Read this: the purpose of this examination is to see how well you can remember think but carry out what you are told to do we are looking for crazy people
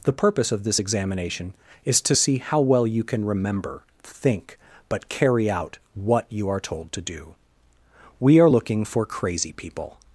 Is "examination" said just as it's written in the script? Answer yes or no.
yes